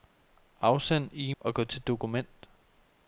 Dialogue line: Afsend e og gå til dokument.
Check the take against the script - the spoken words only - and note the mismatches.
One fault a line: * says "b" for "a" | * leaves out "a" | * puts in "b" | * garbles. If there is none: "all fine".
all fine